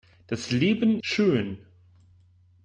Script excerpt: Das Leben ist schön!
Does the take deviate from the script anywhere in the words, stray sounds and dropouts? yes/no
yes